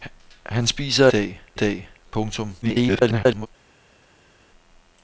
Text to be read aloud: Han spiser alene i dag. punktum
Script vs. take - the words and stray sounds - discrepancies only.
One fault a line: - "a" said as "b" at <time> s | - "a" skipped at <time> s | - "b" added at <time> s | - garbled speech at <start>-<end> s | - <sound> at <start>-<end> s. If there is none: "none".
- "alene" said as "dag" at 1.1 s
- garbled speech at 2.6-3.5 s